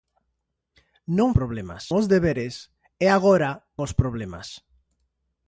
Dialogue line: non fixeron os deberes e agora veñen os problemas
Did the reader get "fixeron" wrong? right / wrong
wrong